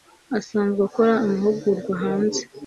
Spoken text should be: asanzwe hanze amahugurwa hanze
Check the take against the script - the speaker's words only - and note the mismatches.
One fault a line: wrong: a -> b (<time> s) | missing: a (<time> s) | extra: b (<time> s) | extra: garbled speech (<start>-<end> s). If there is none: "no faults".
wrong: hanze -> akora (0.9 s)